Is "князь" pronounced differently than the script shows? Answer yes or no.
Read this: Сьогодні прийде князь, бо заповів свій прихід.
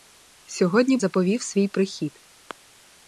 yes